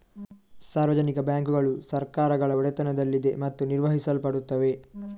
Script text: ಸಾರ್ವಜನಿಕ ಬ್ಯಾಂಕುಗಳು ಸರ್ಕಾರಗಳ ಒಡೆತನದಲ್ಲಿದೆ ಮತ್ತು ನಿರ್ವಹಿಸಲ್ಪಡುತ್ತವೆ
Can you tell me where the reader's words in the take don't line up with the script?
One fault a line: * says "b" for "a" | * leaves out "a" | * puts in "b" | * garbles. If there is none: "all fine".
all fine